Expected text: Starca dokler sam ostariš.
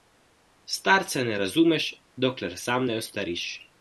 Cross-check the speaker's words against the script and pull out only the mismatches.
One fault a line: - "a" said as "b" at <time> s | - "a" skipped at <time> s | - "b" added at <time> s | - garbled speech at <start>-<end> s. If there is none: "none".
- "ne razumeš" added at 1.2 s
- "ne" added at 2.8 s